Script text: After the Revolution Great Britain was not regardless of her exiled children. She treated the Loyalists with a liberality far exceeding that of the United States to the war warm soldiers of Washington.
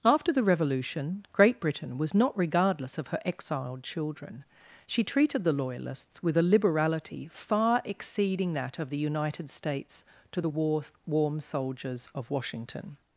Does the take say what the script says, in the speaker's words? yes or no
yes